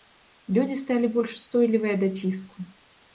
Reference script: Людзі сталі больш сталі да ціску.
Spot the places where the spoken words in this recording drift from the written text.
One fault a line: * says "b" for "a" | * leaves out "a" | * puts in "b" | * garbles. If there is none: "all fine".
* says "устойлівыя" for "сталі"